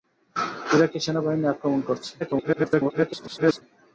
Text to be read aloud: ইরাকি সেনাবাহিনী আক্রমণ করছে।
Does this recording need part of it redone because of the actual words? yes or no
yes